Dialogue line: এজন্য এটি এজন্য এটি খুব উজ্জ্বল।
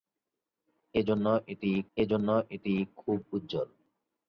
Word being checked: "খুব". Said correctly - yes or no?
yes